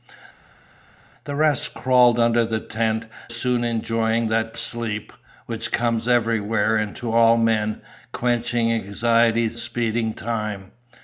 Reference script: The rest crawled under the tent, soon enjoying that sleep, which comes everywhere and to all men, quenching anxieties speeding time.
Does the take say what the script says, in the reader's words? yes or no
yes